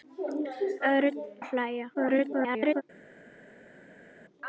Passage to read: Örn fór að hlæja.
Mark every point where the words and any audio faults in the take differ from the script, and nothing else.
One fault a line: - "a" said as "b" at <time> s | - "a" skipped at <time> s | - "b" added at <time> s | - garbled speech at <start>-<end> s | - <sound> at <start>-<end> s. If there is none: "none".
- "fór" skipped at 1.2 s
- garbled speech at 1.9-2.8 s